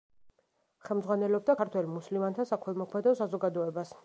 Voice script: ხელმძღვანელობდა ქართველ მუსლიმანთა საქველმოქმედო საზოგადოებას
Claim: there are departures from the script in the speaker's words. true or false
false